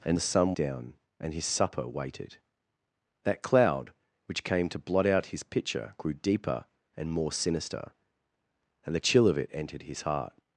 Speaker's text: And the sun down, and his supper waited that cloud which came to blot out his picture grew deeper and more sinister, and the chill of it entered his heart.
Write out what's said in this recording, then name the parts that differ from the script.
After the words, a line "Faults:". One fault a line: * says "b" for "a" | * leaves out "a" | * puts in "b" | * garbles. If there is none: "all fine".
And the sun down, and his supper waited that cloud which came to blot out his picture grew deeper and more sinister, and the chill of it entered his heart.
Faults:
all fine